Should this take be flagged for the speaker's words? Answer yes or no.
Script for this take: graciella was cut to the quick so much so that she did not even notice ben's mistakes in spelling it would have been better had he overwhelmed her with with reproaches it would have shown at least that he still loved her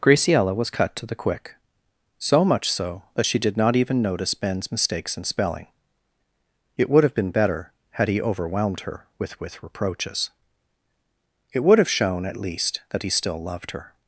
no